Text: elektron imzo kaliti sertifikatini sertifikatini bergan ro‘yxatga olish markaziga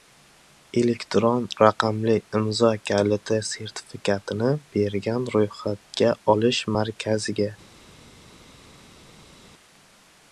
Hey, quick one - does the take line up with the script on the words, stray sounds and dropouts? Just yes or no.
no